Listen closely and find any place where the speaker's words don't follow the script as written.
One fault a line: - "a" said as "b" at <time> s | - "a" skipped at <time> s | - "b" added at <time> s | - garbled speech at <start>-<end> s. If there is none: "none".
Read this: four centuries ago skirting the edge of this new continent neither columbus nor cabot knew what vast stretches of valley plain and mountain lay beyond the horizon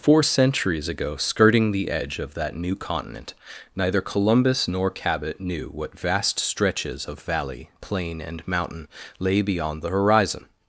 - "this" said as "that" at 2.3 s